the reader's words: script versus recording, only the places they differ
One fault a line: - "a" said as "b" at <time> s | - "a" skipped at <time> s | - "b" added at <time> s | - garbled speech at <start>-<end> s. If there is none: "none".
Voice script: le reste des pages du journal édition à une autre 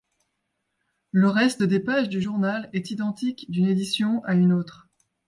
- "est identique d'une" added at 2.7 s